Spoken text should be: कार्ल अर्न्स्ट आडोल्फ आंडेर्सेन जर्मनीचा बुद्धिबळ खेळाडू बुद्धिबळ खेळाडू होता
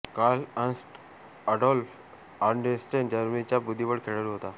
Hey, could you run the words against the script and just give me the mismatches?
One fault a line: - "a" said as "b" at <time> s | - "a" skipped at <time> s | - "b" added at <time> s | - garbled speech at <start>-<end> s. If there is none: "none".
- "बुद्धिबळ खेळाडू" skipped at 4.3 s